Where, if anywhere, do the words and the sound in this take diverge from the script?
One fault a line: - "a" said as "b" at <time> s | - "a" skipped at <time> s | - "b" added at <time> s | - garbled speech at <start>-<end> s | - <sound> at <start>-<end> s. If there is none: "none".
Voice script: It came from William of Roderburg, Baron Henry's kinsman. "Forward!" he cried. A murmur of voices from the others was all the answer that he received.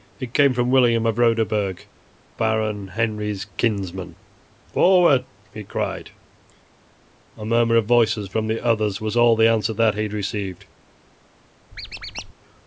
- squeak at 11.7-12.3 s